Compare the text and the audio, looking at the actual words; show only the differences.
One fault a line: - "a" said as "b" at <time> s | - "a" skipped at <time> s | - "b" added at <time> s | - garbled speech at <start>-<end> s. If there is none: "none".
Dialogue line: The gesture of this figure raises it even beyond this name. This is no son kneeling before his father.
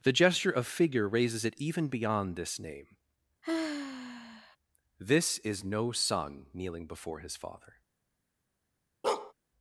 - "this" skipped at 0.7 s